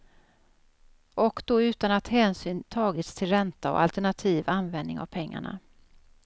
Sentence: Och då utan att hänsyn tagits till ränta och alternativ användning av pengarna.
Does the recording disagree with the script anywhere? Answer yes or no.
no